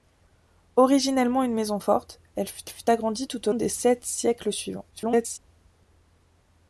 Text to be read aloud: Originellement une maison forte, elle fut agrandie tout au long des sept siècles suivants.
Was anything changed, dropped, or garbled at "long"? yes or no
yes